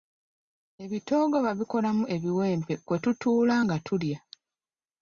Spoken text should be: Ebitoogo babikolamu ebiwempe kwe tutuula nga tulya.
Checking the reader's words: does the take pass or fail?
pass